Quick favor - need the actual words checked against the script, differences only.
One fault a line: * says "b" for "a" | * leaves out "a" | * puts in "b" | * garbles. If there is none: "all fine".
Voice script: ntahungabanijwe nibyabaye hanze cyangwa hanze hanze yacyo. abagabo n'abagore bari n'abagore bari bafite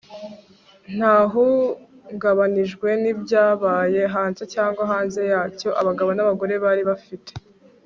* leaves out "hanze"
* leaves out "n'abagore bari"